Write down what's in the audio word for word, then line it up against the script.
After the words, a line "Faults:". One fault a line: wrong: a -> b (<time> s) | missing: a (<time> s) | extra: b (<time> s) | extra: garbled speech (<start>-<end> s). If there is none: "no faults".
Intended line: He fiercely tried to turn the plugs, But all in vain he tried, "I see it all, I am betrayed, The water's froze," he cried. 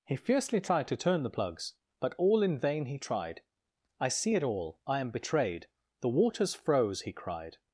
He fiercely tried to turn the plugs, But all in vain he tried, "I see it all, I am betrayed, The water's froze," he cried.
Faults:
no faults